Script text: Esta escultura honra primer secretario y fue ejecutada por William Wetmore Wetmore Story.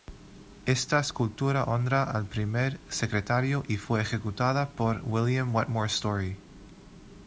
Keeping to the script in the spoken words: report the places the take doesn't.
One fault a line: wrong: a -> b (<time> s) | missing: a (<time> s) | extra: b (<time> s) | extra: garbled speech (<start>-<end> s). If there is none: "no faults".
extra: al (2.0 s)
missing: Wetmore (5.9 s)